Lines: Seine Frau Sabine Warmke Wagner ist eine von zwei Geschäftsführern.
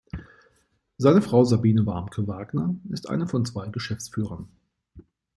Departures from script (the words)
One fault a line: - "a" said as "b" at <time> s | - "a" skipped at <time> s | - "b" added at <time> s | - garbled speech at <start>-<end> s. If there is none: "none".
none